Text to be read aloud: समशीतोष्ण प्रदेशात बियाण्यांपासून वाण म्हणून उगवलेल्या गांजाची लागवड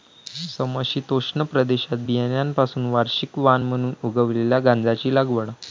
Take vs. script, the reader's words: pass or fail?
fail